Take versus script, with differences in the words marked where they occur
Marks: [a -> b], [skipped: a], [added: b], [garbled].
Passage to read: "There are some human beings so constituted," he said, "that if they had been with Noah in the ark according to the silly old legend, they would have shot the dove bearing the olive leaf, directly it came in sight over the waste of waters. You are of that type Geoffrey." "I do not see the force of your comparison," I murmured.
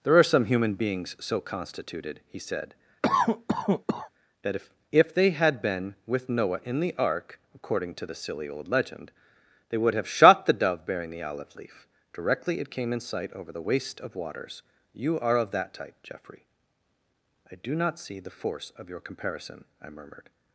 "There are some human beings so constituted," he said, "that if [added: if] they had been with Noah in the ark according to the silly old legend, they would have shot the dove bearing the olive leaf, directly it came in sight over the waste of waters. You are of that type Geoffrey." "I do not see the force of your comparison," I murmured.